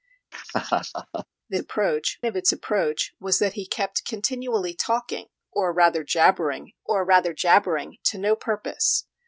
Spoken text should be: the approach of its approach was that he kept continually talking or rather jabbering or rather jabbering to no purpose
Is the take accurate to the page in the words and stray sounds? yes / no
no